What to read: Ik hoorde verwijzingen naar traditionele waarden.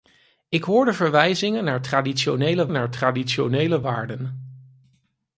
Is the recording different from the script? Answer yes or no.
yes